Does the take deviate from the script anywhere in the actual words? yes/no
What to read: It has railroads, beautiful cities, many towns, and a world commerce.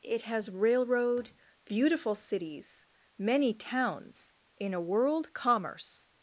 yes